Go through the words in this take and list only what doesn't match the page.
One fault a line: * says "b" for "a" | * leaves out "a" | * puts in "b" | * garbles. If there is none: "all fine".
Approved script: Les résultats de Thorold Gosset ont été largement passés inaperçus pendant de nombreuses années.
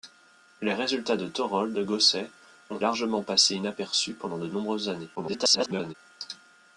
* leaves out "été"
* garbles